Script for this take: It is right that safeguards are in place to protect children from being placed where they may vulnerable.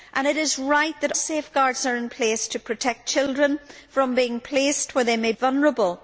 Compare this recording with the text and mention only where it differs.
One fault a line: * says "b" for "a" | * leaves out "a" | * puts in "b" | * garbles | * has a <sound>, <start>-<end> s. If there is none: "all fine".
all fine